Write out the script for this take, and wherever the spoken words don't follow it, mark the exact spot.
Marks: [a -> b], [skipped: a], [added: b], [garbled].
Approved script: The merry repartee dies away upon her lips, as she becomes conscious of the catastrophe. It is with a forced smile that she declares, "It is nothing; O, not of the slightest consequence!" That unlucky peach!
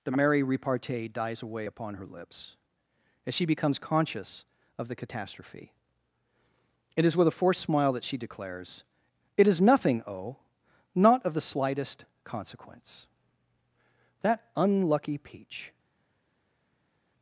The merry repartee dies away upon her lips, as she becomes conscious of the catastrophe. It is with a forced smile that she declares, "It is nothing; O, not of the slightest consequence!" That unlucky peach!